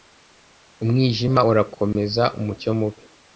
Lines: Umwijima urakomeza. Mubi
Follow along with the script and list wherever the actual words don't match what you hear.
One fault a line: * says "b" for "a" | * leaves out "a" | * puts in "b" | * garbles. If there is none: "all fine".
* puts in "Umucyo"